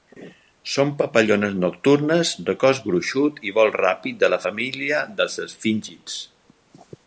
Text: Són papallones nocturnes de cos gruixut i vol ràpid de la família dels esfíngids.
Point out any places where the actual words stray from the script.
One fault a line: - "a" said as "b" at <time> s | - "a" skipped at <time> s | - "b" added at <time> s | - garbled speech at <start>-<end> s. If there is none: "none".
none